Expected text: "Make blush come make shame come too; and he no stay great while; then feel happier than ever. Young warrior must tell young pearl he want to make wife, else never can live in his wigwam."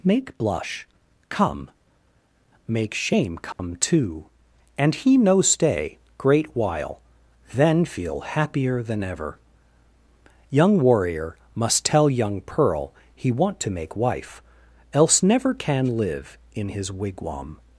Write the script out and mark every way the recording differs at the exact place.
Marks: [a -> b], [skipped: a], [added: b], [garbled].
"Make blush come make shame come too; and he no stay great while; then feel happier than ever. Young warrior must tell young pearl he want to make wife, else never can live in his wigwam."